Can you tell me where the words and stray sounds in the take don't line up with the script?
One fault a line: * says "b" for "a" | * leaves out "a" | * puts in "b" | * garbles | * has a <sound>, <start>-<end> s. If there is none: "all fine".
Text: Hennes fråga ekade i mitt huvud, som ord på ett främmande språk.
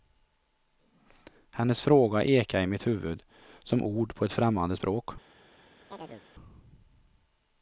* has a chirp, 5.9-6.2 s